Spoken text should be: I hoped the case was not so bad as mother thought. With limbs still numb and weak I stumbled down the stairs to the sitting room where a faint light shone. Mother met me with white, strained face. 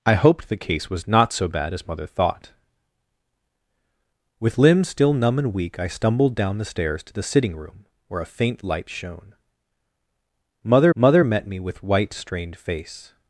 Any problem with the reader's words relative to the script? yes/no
yes